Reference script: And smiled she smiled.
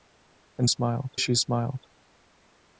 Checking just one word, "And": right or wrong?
right